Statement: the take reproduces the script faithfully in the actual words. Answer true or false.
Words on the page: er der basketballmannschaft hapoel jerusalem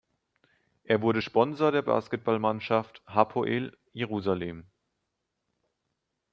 false